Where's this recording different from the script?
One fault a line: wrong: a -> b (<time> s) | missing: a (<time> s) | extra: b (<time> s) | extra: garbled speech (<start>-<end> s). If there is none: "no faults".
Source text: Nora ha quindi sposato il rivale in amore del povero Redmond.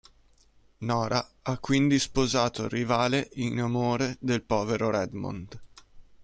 no faults